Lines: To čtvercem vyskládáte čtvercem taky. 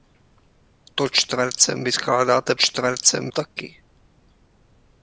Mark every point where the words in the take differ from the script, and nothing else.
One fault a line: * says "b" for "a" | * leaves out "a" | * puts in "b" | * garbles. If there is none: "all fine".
all fine